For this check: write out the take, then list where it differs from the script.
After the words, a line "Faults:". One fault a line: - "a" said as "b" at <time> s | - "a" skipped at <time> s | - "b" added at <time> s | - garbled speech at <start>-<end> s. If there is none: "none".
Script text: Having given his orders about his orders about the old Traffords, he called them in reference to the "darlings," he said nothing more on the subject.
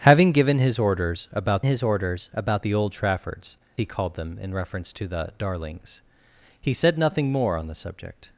Having given his orders about his orders about the old Traffords, he called them in reference to the "darlings," he said nothing more on the subject.
Faults:
none